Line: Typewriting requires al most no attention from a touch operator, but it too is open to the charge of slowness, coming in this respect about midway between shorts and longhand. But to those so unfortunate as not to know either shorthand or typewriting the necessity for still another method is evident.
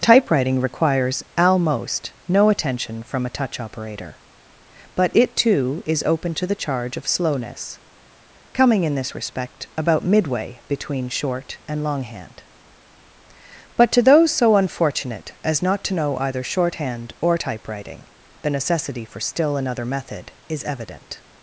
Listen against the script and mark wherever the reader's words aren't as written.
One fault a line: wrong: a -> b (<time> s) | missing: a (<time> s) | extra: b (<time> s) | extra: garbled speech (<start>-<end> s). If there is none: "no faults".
wrong: shorts -> short (11.1 s)